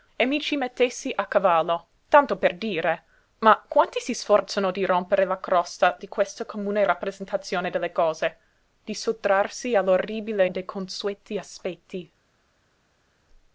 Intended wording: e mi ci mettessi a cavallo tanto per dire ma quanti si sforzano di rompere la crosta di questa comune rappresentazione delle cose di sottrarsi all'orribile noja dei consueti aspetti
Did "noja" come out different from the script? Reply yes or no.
yes